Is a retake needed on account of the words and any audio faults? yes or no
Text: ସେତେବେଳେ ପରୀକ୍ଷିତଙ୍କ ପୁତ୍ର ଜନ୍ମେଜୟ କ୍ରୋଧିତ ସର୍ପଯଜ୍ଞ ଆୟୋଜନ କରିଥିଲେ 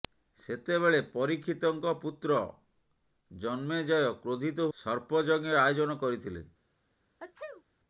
yes